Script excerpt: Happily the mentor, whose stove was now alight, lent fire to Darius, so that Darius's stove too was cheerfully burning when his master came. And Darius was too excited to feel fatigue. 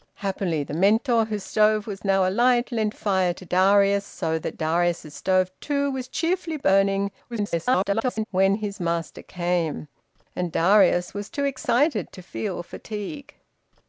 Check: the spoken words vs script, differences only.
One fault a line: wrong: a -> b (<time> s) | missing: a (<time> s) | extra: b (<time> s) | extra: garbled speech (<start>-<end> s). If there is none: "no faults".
extra: garbled speech (7.3-8.3 s)